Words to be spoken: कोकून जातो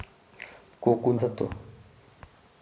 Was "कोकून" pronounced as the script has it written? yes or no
yes